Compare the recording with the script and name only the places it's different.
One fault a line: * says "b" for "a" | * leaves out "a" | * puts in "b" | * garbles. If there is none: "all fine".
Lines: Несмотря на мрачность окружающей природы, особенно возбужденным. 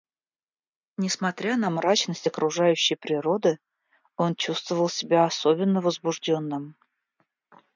* puts in "он чувствовал себя"